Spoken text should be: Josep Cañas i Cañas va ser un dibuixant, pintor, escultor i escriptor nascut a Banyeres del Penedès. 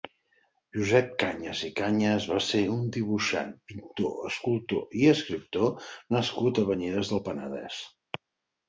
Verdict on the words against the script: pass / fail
pass